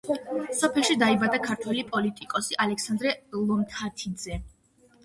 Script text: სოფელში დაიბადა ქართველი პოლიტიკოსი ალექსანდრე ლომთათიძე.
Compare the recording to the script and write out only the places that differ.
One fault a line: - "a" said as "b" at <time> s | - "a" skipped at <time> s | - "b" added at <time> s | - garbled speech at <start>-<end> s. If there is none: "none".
none